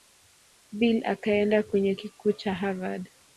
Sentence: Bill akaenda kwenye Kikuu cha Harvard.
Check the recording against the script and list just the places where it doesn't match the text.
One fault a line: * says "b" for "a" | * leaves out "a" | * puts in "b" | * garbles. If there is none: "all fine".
all fine